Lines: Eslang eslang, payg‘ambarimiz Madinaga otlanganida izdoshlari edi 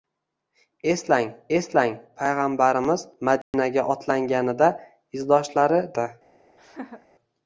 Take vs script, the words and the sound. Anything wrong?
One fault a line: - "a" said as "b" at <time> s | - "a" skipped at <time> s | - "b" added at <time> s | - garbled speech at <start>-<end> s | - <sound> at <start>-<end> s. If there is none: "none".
- dropout at 3.4-3.5 s
- laugh at 6.6-7.1 s